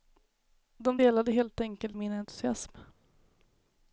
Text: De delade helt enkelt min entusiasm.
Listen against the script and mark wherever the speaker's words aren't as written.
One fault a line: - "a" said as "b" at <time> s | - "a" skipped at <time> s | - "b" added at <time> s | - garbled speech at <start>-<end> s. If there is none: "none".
none